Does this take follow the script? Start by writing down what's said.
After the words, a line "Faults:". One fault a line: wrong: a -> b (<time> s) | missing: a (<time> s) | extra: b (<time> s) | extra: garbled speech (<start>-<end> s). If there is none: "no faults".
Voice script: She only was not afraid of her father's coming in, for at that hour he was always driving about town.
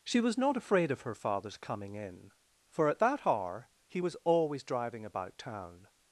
She was not afraid of her father's coming in, for at that hour he was always driving about town.
Faults:
missing: only (0.2 s)